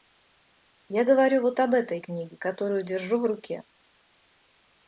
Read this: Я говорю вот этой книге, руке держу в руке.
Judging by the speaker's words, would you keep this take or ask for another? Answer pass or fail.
fail